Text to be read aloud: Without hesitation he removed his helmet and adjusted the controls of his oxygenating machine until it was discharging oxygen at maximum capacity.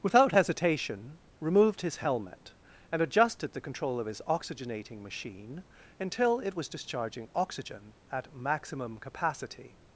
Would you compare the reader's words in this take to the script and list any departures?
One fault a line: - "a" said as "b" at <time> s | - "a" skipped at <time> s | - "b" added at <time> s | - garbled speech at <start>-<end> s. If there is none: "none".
- "he" skipped at 1.2 s
- "controls" said as "control" at 3.6 s